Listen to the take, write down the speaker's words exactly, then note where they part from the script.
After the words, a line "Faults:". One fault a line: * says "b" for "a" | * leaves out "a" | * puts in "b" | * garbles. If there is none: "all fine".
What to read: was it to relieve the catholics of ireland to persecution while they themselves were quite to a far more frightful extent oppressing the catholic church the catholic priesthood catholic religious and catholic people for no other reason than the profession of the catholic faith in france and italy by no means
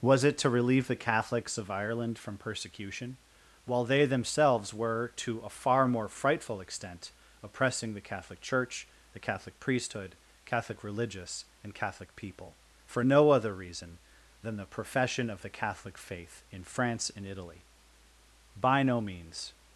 was it to relieve the catholics of ireland from persecution while they themselves were to a far more frightful extent oppressing the catholic church the catholic priesthood catholic religious and catholic people for no other reason than the profession of the catholic faith in france and italy by no means
Faults:
* says "from" for "to"
* leaves out "quite"